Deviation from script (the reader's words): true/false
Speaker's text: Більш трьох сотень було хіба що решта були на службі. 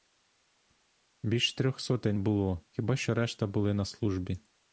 false